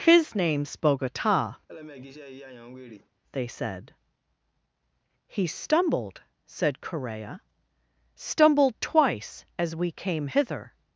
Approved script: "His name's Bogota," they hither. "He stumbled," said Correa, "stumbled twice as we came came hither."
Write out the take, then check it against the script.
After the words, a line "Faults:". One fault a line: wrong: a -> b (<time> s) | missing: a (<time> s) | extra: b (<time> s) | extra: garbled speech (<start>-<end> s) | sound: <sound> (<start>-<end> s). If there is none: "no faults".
"His name's Bogota," they said. "He stumbled," said Correa, "stumbled twice as we came hither."
Faults:
sound: laugh (1.7-3.1 s)
wrong: hither -> said (3.5 s)
missing: came (10.3 s)